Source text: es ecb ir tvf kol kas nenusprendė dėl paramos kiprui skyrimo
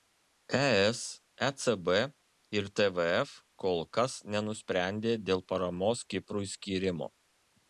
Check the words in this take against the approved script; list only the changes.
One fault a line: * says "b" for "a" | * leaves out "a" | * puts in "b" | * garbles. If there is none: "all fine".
all fine